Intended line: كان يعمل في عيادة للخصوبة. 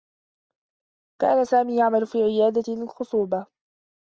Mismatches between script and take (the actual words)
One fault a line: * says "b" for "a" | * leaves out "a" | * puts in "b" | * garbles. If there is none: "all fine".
* puts in "سامي"